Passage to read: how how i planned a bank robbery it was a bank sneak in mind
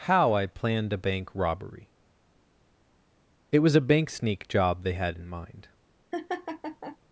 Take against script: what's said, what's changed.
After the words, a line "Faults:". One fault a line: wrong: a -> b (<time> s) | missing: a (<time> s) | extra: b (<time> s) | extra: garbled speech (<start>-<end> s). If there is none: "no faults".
how i planned a bank robbery it was a bank sneak job they had in mind
Faults:
missing: how (0.3 s)
extra: job they had (4.5 s)